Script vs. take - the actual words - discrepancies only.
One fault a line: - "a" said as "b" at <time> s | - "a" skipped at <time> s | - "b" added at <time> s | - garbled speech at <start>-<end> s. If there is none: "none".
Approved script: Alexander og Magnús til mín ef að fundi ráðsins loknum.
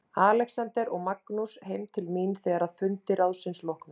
- "heim" added at 1.7 s
- "ef" said as "þegar" at 2.4 s